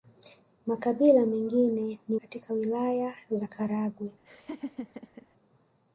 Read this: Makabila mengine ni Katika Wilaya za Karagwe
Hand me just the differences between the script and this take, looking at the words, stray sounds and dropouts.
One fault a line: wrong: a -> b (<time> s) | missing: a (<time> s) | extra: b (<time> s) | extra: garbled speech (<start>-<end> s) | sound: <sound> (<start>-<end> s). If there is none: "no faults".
sound: laugh (4.2-5.3 s)